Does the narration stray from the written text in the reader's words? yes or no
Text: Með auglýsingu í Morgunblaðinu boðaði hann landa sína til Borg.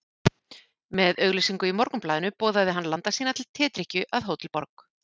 yes